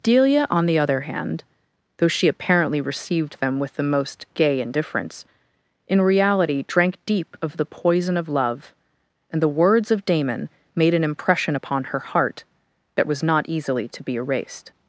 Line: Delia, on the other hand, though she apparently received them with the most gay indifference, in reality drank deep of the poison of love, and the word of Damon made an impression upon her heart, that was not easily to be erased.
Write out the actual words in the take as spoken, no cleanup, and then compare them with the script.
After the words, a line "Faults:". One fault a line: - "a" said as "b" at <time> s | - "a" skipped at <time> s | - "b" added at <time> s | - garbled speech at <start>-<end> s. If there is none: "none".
Delia, on the other hand, though she apparently received them with the most gay indifference, in reality drank deep of the poison of love, and the words of Damon made an impression upon her heart, that was not easily to be erased.
Faults:
- "word" said as "words" at 9.5 s